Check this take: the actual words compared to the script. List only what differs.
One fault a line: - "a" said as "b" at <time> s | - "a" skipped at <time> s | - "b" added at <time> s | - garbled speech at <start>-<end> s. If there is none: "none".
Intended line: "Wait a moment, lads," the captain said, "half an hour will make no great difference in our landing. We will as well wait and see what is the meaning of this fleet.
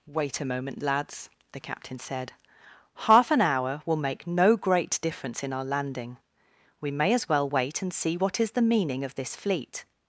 - "will" said as "may" at 6.9 s